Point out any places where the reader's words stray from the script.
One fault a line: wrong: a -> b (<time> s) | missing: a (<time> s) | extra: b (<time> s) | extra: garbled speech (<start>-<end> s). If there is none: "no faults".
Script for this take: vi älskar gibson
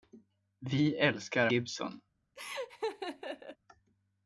no faults